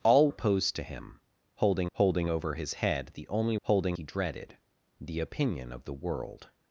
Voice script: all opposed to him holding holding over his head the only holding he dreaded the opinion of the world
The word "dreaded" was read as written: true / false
true